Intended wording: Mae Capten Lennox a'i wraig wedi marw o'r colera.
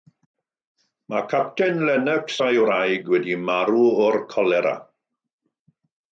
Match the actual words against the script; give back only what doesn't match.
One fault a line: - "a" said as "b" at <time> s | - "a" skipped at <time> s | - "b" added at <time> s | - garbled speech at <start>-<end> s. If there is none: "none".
none